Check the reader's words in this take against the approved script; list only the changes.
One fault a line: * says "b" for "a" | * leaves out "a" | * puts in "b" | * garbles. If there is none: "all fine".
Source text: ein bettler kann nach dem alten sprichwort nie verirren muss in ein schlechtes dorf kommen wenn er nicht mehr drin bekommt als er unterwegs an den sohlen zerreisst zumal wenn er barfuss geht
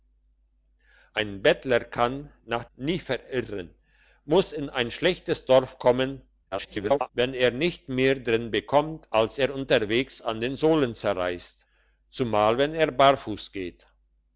* leaves out "dem alten sprichwort"
* garbles